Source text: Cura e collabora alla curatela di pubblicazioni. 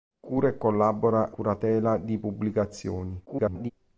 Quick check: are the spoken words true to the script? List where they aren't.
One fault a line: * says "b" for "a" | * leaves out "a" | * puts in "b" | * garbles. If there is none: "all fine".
* leaves out "alla"
* garbles